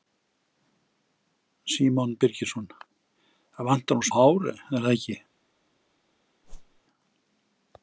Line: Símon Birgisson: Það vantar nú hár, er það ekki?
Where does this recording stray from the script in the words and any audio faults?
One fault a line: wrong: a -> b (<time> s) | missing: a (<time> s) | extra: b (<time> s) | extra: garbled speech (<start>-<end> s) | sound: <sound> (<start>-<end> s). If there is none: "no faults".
sound: whoosh (6.4-6.8 s)